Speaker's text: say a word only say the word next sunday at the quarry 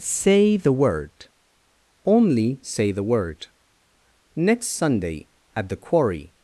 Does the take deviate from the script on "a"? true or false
true